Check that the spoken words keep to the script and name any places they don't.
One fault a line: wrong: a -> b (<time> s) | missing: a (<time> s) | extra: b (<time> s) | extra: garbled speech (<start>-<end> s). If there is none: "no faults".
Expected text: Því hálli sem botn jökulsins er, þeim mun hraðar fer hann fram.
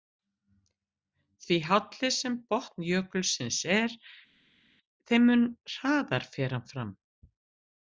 no faults